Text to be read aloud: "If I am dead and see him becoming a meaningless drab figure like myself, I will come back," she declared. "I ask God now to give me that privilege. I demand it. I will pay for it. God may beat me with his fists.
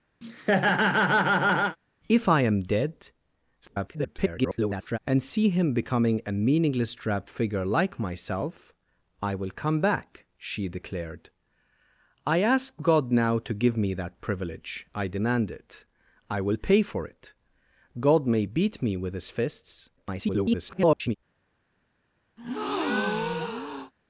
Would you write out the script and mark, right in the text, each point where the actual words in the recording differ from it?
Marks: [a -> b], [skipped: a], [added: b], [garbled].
"If I am dead [garbled] and see him becoming a meaningless drab figure like myself, I will come back," she declared. "I ask God now to give me that privilege. I demand it. I will pay for it. God may beat me with his fists. [garbled]